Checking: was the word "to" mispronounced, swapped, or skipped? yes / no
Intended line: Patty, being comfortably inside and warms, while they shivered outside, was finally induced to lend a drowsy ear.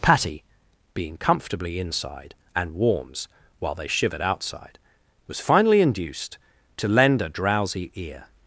no